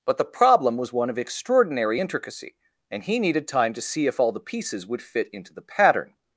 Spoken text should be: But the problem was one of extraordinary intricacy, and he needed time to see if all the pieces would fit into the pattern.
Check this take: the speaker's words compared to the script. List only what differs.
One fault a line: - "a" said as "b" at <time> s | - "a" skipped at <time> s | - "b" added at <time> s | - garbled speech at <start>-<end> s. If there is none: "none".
none